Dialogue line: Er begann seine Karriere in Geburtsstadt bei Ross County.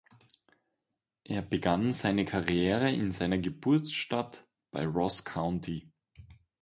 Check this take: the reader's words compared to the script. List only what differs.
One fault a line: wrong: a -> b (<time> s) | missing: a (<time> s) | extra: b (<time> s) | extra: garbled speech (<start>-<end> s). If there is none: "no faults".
extra: seiner (3.1 s)